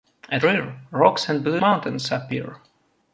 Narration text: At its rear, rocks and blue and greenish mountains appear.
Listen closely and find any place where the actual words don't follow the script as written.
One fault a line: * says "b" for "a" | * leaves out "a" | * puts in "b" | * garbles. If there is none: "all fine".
* leaves out "its"
* leaves out "and greenish"